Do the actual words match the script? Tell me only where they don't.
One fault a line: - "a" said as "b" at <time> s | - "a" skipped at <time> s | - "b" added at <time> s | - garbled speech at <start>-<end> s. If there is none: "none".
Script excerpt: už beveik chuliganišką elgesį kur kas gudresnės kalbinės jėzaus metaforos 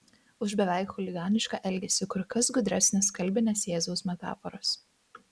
none